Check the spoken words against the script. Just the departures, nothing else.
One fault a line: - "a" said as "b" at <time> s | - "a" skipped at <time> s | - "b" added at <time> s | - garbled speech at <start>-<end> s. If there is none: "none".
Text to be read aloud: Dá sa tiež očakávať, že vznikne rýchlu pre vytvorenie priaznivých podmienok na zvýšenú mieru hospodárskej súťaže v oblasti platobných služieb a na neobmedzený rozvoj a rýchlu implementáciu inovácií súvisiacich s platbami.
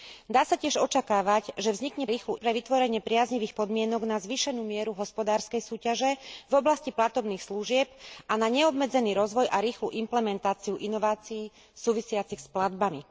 none